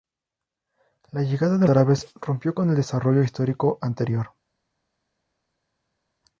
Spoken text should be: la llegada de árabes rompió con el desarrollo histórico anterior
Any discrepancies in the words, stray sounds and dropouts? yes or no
no